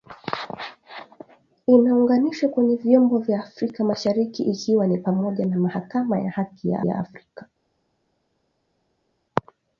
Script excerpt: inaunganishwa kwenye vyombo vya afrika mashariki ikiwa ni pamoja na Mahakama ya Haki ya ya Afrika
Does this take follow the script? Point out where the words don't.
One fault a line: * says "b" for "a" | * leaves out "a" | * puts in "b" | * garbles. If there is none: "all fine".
all fine